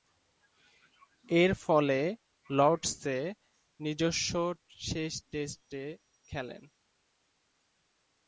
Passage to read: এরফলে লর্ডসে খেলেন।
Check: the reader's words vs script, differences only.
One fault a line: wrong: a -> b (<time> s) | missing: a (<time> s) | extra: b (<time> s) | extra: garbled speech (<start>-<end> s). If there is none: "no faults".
extra: নিজস্ব শেষ টেস্টে (3.8 s)